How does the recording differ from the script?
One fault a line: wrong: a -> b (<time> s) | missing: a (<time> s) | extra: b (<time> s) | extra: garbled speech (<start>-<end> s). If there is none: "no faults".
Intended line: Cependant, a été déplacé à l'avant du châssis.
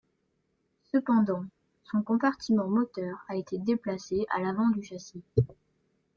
extra: son compartiment moteur (1.8 s)